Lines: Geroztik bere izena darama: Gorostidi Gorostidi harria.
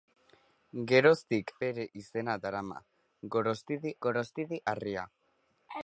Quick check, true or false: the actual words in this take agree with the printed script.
true